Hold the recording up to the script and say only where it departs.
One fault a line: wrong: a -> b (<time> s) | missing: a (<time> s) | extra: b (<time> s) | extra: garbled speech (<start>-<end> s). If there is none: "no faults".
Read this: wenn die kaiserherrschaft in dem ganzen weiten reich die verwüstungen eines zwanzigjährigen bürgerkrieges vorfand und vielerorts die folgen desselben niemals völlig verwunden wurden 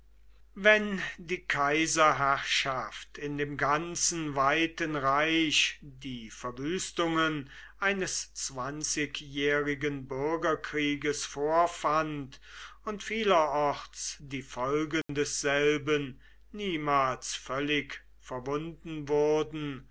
no faults